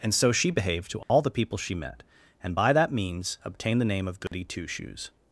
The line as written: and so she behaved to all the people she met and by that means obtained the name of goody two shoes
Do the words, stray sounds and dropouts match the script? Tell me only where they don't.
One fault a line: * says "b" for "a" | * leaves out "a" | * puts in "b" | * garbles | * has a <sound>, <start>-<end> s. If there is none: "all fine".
* has a dropout, 1.0-1.1 s
* has a dropout, 4.3-4.3 s